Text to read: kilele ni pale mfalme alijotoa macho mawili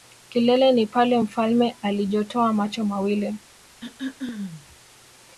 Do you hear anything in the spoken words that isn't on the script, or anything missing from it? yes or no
no